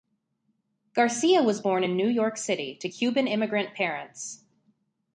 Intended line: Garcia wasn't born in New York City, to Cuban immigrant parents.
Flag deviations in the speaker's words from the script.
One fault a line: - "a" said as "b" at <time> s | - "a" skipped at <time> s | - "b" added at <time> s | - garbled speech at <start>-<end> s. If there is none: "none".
- "wasn't" said as "was" at 1.4 s